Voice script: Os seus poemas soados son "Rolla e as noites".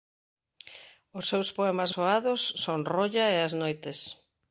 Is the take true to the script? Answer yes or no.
yes